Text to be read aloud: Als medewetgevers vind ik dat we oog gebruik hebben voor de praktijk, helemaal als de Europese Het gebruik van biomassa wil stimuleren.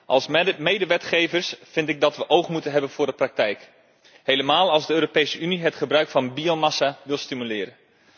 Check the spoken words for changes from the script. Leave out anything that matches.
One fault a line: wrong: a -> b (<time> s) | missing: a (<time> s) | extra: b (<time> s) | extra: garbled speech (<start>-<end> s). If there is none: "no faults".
wrong: gebruik -> moeten (2.5 s)
extra: Unie (5.4 s)